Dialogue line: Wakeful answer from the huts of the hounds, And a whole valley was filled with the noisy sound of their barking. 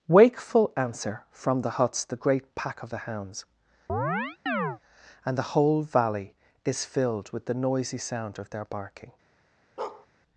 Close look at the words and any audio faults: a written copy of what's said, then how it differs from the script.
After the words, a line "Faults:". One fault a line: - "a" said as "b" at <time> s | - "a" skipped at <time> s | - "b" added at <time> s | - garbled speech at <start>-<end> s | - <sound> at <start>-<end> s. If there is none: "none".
Wakeful answer from the huts the great pack of the hounds, And the whole valley is filled with the noisy sound of their barking.
Faults:
- "the great pack" added at 2.0 s
- chirp at 3.9-4.8 s
- "a" said as "the" at 5.4 s
- "was" said as "is" at 6.6 s
- bark at 9.8-10.1 s